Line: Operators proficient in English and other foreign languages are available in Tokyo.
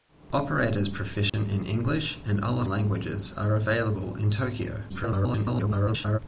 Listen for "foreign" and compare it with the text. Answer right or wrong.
wrong